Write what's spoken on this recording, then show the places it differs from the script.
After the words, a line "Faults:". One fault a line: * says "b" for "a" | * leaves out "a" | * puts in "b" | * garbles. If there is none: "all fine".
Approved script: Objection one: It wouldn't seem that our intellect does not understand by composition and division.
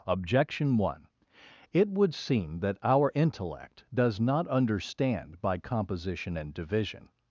Objection one: It would seem that our intellect does not understand by composition and division.
Faults:
* says "would" for "wouldn't"